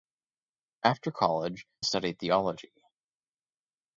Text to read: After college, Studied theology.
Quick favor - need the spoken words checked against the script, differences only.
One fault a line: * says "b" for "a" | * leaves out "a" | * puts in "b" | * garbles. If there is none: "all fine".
all fine